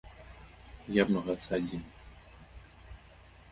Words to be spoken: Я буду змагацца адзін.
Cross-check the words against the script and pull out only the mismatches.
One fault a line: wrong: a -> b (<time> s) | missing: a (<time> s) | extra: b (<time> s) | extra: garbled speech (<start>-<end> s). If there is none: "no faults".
missing: буду (1.0 s)